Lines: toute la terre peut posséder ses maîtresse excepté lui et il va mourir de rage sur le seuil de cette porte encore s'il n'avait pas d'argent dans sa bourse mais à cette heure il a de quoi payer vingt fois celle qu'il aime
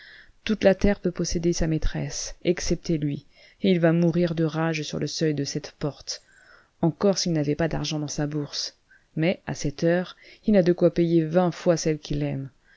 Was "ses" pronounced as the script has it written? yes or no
no